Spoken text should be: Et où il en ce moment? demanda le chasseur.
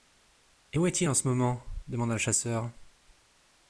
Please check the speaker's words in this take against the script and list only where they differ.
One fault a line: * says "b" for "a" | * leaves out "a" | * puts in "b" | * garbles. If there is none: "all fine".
* puts in "est"